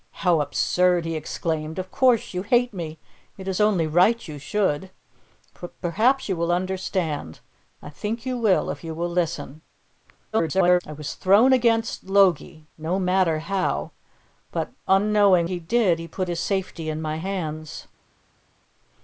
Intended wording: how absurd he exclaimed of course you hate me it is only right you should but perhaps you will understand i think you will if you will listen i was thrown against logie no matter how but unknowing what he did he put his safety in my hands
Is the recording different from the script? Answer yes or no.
yes